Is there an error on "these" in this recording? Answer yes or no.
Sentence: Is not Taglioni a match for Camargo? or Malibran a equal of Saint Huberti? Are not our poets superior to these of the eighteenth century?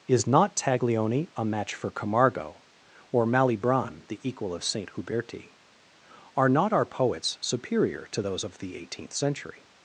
yes